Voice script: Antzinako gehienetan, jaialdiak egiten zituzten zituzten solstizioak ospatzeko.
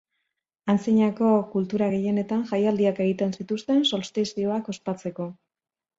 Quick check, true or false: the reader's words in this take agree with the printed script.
false